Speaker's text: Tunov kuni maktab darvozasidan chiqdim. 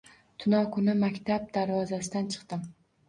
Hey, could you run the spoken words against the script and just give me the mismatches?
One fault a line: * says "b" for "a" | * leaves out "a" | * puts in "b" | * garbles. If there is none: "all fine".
all fine